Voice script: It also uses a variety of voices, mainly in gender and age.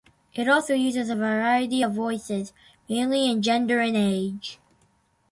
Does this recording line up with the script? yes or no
yes